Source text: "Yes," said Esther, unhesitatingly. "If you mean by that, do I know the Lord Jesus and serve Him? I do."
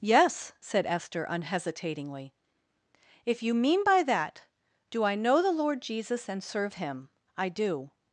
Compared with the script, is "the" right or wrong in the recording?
right